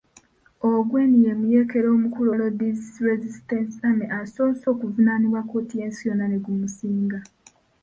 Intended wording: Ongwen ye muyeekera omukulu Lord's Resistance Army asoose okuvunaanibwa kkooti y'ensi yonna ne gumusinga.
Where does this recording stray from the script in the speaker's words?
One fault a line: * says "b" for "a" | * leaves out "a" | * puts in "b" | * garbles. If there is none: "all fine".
all fine